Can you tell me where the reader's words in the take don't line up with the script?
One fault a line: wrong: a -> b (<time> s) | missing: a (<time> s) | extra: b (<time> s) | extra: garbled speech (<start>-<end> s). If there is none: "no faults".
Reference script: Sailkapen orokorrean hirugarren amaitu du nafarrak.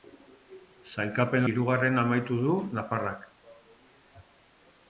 missing: orokorrean (1.4 s)